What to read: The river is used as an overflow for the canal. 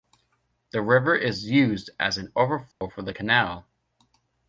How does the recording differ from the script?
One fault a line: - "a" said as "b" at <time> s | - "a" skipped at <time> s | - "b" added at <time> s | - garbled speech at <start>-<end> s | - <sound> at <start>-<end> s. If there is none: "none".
- dropout at 2.7-2.8 s